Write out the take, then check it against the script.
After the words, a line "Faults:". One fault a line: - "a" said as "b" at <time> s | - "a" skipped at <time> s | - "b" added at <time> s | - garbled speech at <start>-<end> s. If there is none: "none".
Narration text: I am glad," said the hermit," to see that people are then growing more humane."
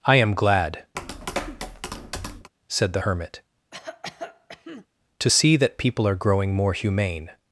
I am glad," said the hermit," to see that people are growing more humane."
Faults:
- "then" skipped at 6.1 s